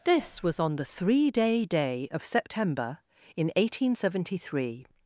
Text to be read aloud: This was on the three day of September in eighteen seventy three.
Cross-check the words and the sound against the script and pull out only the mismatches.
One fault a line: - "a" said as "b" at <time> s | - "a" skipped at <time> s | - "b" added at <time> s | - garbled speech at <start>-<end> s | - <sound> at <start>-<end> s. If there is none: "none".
- "day" added at 1.6 s